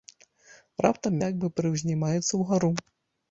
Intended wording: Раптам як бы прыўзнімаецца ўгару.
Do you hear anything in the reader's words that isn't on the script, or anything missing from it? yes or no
no